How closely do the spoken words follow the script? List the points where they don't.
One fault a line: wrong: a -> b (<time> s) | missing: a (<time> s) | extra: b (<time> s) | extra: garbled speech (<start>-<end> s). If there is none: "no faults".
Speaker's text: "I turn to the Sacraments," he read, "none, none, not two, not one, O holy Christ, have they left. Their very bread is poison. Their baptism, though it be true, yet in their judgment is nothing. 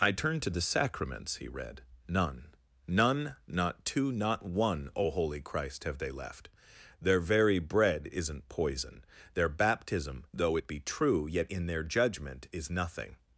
wrong: is -> isn't (8.1 s)